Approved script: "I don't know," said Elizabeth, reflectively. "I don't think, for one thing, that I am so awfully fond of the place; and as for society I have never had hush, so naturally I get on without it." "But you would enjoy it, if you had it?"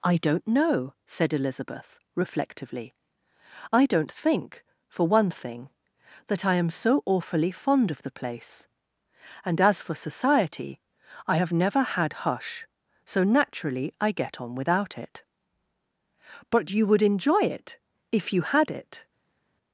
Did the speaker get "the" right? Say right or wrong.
right